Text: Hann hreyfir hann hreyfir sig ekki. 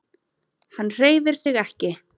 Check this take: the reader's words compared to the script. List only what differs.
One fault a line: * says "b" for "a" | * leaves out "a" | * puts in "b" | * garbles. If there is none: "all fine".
* leaves out "hann hreyfir"